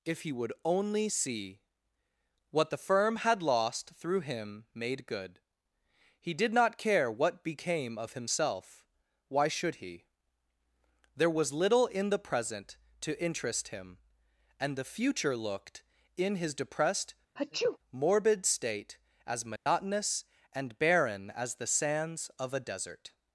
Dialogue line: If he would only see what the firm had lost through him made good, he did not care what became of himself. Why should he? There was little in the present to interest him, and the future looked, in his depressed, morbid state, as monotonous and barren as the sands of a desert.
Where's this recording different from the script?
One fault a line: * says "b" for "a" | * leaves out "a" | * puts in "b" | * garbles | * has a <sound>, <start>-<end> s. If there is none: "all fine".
* has a sneeze, 17.4-17.8 s
* has a dropout, 19.6-19.7 s